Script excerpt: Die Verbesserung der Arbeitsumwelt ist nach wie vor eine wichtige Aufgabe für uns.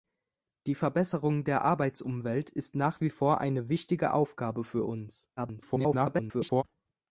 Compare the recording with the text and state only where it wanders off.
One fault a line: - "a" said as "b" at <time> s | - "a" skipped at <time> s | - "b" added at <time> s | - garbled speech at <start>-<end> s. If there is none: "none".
- garbled speech at 5.4-6.6 s